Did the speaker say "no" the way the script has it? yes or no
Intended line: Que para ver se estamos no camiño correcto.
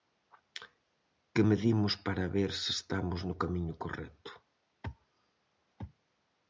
yes